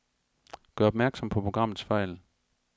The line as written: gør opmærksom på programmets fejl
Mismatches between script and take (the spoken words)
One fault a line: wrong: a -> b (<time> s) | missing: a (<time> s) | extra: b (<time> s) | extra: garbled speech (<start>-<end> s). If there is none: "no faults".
no faults